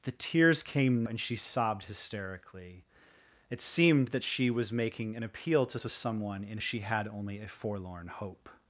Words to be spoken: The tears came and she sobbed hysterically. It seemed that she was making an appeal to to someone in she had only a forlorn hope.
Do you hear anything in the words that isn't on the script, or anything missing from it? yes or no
no